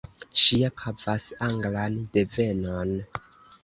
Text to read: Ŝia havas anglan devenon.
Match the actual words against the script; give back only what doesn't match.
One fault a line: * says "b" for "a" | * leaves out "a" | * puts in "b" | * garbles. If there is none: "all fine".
all fine